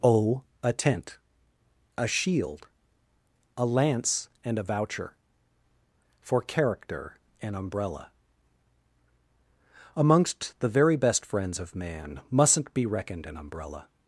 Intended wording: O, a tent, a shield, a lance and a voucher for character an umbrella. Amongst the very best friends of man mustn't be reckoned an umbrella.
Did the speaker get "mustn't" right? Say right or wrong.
right